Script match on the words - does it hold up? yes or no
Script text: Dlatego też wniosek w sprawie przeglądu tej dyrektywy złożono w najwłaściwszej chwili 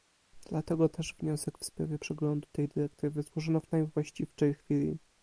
yes